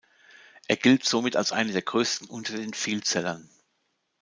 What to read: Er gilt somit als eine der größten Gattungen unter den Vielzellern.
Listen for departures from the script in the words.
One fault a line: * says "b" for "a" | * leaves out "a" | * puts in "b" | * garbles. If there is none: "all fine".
* leaves out "Gattungen"